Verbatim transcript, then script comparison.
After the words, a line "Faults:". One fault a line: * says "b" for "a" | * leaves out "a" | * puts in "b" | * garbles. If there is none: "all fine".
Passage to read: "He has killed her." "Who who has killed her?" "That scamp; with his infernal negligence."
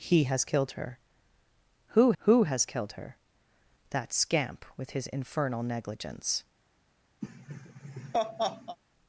"He has killed her." "Who who has killed her?" "That scamp; with his infernal negligence."
Faults:
all fine